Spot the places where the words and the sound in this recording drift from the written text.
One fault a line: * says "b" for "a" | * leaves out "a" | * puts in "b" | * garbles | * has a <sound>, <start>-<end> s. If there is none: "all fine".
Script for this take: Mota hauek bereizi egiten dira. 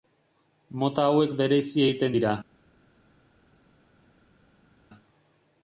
all fine